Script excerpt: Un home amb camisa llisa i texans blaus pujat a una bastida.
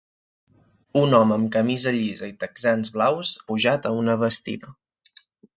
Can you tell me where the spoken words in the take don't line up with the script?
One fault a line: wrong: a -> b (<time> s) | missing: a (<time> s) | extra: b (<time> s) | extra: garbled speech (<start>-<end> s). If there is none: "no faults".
no faults